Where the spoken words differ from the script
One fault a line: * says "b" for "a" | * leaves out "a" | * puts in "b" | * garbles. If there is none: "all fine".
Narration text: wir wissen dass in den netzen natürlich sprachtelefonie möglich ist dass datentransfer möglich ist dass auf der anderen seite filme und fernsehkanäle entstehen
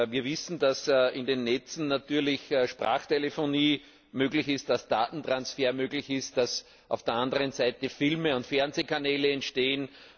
all fine